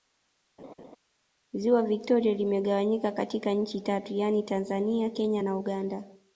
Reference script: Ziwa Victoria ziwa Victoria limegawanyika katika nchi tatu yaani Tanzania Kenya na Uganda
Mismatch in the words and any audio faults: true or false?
true